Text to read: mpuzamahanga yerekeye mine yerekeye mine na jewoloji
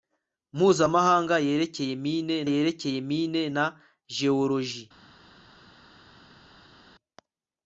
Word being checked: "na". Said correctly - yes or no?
yes